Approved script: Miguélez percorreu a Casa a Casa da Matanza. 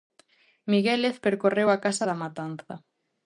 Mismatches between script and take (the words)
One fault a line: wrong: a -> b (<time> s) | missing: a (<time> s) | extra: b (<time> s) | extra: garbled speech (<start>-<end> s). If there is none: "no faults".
missing: a Casa (2.1 s)